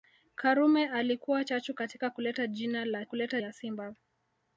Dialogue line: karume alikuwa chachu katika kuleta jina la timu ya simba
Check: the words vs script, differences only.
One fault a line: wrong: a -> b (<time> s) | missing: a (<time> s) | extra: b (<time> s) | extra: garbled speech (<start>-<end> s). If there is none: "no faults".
wrong: timu -> kuleta (3.0 s)